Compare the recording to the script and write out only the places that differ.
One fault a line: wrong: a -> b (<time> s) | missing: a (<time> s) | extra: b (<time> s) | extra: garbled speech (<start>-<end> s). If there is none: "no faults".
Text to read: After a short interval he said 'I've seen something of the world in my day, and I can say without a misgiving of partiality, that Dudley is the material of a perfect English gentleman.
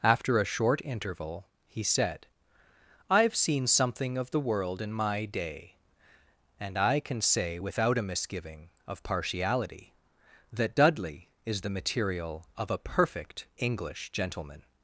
no faults